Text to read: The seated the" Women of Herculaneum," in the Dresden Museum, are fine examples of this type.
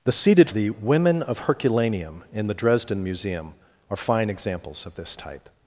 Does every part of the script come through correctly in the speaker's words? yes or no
yes